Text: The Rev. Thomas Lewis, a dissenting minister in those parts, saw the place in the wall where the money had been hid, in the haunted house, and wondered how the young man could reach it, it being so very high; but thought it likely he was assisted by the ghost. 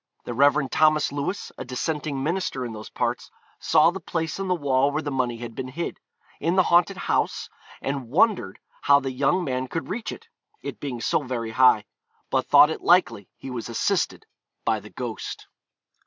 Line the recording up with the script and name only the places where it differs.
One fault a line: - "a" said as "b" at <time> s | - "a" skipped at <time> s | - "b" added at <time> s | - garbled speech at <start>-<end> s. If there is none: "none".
none